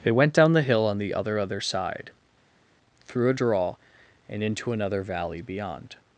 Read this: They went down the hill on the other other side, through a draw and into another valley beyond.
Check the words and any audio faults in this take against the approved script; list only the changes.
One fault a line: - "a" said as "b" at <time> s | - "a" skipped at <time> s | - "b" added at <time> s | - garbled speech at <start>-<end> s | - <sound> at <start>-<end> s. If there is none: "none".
none